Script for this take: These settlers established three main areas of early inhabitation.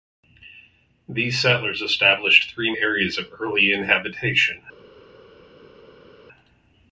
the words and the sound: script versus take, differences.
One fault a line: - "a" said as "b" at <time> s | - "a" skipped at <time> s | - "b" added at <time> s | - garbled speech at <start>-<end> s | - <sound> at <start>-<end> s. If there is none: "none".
- "main" skipped at 2.7 s